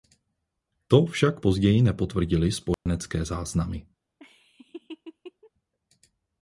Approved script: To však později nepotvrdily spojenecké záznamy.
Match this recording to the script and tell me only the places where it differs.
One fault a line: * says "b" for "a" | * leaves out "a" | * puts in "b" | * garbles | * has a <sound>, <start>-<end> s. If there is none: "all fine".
* has a dropout, 2.7-2.9 s
* has a laugh, 4.2-5.5 s